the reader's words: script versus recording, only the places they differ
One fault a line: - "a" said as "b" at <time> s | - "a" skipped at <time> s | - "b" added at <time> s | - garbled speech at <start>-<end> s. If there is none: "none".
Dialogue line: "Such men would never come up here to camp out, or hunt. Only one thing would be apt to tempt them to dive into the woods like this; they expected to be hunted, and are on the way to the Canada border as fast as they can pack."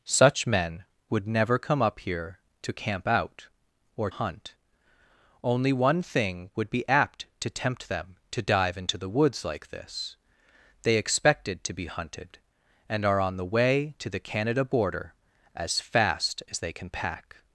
none